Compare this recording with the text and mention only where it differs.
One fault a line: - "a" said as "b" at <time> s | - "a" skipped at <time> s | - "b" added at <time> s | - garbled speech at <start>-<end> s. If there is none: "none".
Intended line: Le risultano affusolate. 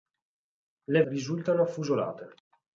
none